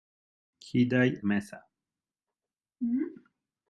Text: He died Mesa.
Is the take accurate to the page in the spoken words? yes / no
yes